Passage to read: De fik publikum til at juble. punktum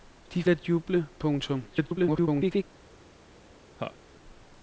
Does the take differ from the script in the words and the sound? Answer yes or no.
yes